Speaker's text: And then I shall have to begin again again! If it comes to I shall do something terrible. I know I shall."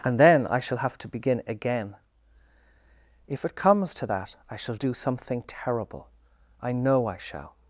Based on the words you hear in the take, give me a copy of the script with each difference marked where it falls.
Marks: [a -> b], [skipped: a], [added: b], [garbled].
And then I shall have to begin again [skipped: again!] If it comes to [added: that] I shall do something terrible. I know I shall."